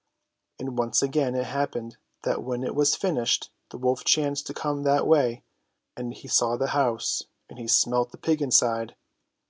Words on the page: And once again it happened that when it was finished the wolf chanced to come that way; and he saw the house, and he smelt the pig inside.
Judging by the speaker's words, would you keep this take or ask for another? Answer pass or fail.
pass